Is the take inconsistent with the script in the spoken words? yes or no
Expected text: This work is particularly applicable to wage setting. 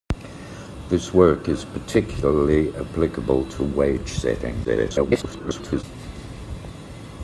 yes